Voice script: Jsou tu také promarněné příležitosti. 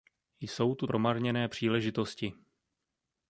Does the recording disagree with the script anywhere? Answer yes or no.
yes